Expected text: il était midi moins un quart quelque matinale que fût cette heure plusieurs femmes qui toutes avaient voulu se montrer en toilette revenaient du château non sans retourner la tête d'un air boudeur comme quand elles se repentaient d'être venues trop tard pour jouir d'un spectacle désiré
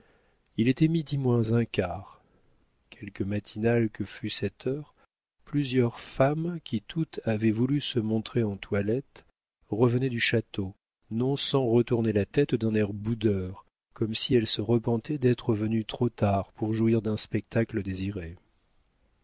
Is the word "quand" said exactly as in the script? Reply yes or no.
no